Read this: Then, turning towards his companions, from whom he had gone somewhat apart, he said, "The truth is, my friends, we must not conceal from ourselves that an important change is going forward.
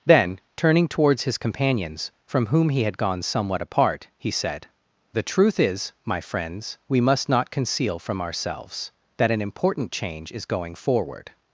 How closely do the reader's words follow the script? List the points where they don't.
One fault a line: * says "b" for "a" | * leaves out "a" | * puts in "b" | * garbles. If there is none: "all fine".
all fine